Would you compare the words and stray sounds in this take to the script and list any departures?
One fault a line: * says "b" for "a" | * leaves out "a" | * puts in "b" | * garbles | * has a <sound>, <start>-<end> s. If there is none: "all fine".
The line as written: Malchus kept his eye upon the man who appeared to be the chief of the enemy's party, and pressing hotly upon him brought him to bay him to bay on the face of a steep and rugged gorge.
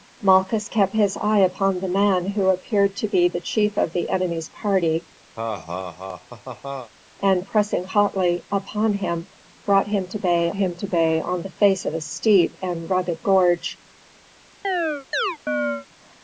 * has a laugh, 5.4-6.9 s
* has a chirp, 14.6-15.9 s